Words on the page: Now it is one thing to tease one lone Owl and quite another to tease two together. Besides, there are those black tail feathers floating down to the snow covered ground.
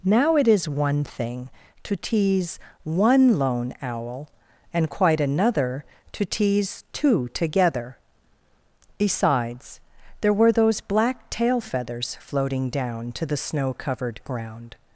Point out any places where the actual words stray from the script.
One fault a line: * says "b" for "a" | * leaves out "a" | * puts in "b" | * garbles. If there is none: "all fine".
* says "were" for "are"